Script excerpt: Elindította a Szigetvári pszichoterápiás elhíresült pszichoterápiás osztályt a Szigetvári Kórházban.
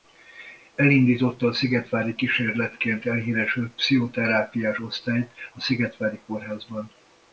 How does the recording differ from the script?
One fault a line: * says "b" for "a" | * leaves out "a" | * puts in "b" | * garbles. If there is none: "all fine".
* says "kísérletként" for "pszichoterápiás"